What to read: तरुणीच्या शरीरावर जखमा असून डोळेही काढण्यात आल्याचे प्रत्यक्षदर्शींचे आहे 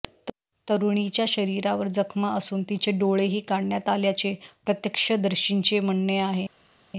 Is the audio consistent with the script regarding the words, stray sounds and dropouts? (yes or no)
no